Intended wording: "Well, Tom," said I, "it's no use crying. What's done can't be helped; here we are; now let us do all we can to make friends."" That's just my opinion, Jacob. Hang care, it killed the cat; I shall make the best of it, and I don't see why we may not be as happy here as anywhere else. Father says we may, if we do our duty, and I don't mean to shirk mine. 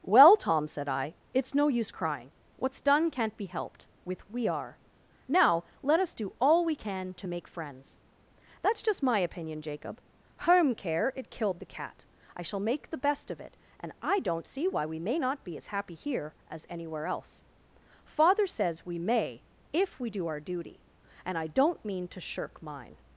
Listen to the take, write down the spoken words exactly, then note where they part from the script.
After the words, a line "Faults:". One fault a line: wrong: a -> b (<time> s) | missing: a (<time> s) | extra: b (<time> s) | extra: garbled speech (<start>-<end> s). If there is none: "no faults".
"Well, Tom," said I, "it's no use crying. What's done can't be helped; with we are; now let us do all we can to make friends."" That's just my opinion, Jacob. Home care, it killed the cat; I shall make the best of it, and I don't see why we may not be as happy here as anywhere else. Father says we may, if we do our duty, and I don't mean to shirk mine.
Faults:
wrong: here -> with (4.0 s)
wrong: Hang -> Home (10.4 s)